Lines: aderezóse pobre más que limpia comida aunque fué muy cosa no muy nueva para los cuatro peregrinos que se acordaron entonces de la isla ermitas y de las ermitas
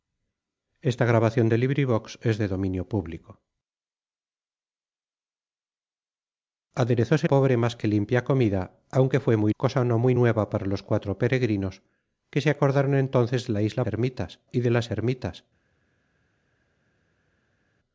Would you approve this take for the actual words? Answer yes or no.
yes